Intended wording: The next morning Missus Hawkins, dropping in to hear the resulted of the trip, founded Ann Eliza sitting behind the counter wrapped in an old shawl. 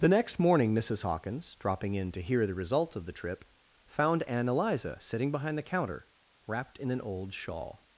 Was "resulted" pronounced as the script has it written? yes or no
no